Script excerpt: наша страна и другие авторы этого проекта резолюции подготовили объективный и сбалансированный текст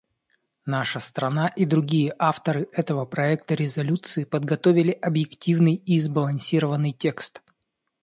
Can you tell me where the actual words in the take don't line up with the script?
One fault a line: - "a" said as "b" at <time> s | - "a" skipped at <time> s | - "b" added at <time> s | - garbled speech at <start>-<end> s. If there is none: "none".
none